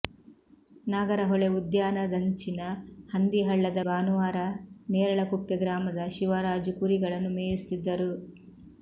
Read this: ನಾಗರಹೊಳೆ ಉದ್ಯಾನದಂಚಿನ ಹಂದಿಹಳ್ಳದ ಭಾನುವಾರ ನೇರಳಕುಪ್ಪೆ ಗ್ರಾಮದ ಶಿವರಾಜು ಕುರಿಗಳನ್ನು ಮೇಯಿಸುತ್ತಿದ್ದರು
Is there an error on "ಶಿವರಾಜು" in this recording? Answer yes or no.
no